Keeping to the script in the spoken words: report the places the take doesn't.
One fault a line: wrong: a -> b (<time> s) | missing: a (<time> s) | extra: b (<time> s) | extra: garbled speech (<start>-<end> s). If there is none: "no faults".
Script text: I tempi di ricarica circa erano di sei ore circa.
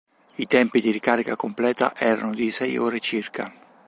wrong: circa -> completa (1.4 s)